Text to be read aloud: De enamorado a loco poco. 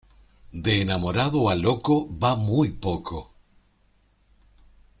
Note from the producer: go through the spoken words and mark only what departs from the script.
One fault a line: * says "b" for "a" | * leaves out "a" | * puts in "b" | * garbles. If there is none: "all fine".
* puts in "va muy"